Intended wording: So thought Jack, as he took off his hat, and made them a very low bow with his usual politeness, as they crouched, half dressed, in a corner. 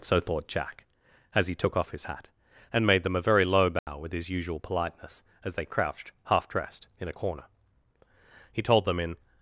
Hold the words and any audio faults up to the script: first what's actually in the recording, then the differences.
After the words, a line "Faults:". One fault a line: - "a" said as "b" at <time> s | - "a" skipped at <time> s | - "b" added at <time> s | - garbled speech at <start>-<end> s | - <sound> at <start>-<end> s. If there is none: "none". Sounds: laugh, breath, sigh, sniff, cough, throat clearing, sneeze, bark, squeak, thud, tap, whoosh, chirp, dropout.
So thought Jack, as he took off his hat, and made them a very low bow with his usual politeness, as they crouched, half dressed, in a corner. He told them in
Faults:
- dropout at 3.8-3.9 s
- "He told them in" added at 8.5 s